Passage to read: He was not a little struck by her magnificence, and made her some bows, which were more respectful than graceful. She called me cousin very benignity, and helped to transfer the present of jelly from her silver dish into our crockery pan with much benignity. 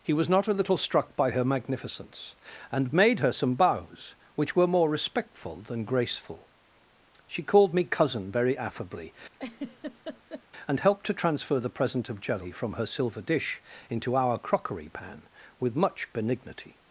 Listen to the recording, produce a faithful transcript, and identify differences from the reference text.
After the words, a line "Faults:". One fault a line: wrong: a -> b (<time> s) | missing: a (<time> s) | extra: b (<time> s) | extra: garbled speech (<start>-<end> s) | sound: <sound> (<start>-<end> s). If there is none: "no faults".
He was not a little struck by her magnificence, and made her some bows, which were more respectful than graceful. She called me cousin very affably, and helped to transfer the present of jelly from her silver dish into our crockery pan with much benignity.
Faults:
wrong: benignity -> affably (8.6 s)
sound: laugh (9.3-10.4 s)